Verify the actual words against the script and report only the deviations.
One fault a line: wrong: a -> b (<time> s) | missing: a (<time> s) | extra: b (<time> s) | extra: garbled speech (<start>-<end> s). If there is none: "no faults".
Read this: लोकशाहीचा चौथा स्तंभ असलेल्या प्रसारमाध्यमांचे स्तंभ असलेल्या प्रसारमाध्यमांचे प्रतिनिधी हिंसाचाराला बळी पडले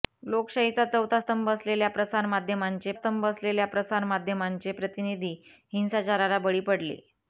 no faults